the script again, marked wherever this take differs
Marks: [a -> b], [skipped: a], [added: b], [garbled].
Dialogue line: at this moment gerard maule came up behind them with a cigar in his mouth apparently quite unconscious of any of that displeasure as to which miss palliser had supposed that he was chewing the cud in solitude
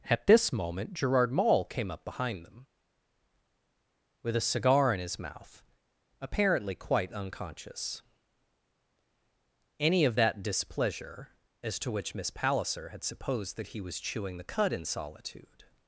at this moment gerard maule came up behind them with a cigar in his mouth apparently quite unconscious [skipped: of] any of that displeasure as to which miss palliser had supposed that he was chewing the cud in solitude